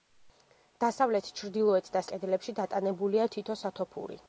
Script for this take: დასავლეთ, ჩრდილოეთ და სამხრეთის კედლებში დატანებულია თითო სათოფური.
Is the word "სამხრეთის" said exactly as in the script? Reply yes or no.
no